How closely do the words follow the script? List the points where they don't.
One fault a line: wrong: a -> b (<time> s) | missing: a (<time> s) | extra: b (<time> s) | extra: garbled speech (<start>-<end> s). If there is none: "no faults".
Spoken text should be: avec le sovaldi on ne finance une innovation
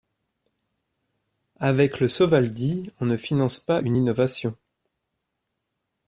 extra: pas (3.6 s)